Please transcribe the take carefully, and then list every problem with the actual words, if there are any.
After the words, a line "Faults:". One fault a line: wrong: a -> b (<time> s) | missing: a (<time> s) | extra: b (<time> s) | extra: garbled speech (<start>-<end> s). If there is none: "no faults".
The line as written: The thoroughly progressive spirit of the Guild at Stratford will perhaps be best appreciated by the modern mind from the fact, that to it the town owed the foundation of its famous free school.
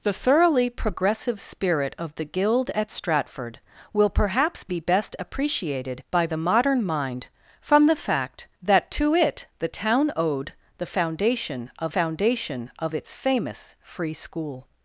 The thoroughly progressive spirit of the Guild at Stratford will perhaps be best appreciated by the modern mind from the fact, that to it the town owed the foundation of foundation of its famous free school.
Faults:
extra: foundation of (11.9 s)